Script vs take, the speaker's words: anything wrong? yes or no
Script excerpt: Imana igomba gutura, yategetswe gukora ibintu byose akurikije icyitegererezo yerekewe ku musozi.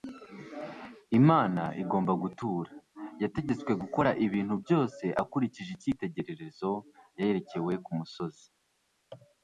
no